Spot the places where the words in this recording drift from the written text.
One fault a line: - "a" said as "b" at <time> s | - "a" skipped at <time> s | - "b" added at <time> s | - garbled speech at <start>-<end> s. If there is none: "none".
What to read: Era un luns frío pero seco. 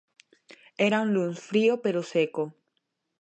none